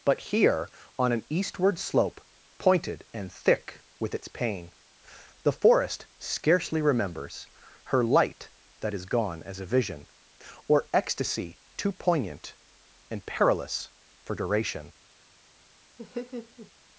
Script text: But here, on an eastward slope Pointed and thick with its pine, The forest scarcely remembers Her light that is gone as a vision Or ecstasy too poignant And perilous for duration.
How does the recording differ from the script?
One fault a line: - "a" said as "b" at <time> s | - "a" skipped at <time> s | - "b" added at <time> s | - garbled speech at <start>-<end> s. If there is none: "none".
- "pine" said as "pain" at 4.3 s